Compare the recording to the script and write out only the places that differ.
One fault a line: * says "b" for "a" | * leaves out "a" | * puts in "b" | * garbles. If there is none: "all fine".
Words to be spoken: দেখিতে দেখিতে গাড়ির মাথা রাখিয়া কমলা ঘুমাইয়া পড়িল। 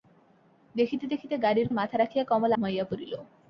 all fine